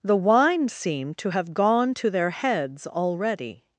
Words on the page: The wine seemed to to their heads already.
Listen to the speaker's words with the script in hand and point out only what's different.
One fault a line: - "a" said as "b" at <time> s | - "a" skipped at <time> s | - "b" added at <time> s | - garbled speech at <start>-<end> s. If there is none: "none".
- "have gone" added at 1.3 s